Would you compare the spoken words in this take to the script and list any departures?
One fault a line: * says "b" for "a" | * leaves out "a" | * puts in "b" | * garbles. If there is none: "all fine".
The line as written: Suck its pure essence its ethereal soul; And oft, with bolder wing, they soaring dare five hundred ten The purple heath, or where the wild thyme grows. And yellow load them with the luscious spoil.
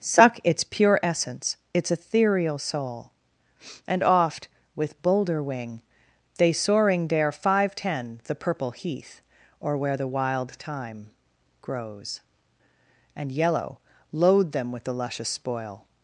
* leaves out "hundred"